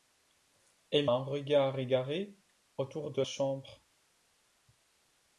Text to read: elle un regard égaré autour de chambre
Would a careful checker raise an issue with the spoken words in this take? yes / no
no